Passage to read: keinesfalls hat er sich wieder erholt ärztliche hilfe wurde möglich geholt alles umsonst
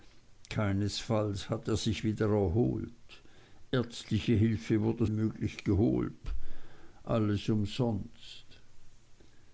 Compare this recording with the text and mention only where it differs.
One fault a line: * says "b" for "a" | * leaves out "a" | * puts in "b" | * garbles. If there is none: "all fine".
all fine